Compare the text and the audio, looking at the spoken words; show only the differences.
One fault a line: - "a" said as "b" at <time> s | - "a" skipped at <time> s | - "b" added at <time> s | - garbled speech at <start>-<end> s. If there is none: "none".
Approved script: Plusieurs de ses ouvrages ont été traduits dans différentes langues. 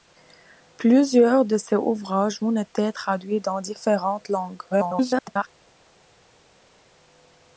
- garbled speech at 4.7-5.5 s